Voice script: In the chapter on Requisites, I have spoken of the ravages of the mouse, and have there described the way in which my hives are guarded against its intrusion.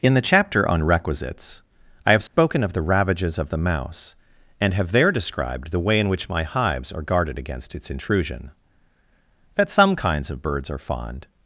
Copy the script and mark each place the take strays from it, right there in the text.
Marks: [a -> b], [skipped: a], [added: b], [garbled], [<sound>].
In the chapter on Requisites, I have spoken [dropout] of the ravages of the mouse, and have there described the way in which my hives are guarded against its intrusion. [added: That some kinds of birds are fond]